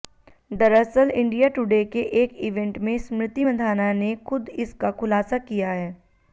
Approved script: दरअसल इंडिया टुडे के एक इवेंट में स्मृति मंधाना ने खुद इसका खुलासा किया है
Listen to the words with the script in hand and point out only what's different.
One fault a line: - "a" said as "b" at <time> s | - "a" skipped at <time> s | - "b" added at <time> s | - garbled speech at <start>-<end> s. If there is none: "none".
none